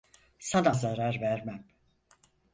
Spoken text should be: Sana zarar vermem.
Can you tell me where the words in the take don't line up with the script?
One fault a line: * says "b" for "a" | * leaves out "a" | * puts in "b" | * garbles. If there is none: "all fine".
all fine